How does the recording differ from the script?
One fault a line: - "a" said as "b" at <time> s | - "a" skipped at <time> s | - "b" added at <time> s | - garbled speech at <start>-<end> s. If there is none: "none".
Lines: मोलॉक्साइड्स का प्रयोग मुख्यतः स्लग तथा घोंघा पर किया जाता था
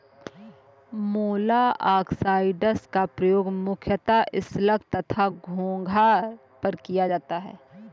- "था" said as "है" at 7.4 s